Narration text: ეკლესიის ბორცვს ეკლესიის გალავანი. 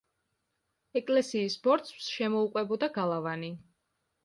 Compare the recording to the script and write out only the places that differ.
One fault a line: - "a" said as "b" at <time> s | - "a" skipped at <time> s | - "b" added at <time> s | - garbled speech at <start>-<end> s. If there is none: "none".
- "ეკლესიის" said as "შემოუყვებოდა" at 2.1 s